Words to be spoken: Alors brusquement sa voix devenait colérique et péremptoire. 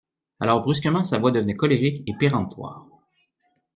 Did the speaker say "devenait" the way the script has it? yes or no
yes